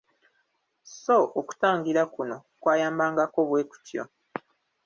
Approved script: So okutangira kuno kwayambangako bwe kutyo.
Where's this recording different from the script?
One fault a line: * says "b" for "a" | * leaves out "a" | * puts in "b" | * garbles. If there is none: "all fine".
all fine